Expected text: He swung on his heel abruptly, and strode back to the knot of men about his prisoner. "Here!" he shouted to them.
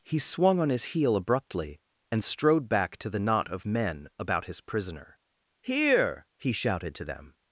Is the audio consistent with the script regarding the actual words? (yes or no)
yes